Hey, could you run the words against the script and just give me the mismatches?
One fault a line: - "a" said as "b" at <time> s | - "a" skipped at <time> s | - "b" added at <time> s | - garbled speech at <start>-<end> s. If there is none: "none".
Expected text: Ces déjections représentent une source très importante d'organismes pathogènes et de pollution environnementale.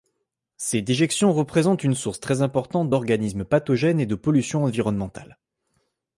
none